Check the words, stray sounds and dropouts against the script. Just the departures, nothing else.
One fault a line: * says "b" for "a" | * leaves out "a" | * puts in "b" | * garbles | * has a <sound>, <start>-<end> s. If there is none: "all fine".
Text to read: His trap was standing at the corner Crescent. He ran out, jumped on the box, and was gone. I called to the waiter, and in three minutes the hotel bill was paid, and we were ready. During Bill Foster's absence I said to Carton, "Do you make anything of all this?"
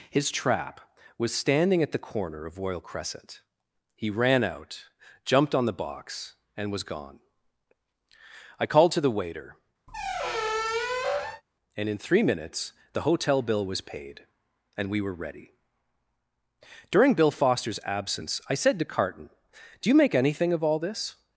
* puts in "of Royal"
* has a squeak, 9.9-11.4 s